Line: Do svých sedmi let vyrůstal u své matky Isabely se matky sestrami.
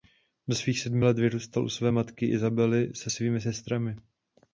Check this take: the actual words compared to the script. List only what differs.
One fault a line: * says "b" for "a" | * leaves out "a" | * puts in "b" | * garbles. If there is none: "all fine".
* says "svými" for "matky"